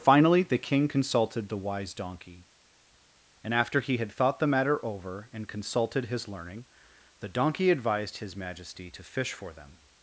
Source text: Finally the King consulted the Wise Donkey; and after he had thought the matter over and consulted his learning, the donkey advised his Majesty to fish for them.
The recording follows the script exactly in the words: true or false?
true